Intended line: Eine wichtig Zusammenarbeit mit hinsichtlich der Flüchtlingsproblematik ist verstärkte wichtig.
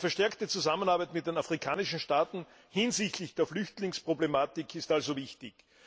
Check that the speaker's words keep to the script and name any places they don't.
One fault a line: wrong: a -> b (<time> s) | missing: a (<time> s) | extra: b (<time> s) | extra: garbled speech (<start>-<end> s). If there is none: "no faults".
wrong: wichtig -> verstärkte (0.1 s)
extra: den afrikanischen Staaten (1.3 s)
wrong: verstärkte -> also (4.9 s)